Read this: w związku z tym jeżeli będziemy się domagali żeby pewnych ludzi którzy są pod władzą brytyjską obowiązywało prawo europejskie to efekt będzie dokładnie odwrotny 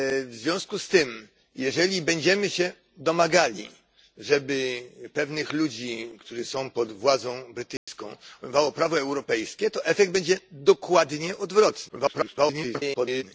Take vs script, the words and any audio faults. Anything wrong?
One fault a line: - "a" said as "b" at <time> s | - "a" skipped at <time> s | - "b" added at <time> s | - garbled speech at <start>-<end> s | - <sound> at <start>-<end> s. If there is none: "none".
- dropout at 7.8-7.9 s
- garbled speech at 11.9-13.2 s